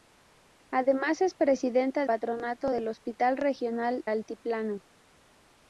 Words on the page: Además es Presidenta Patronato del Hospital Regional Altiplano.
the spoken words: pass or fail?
pass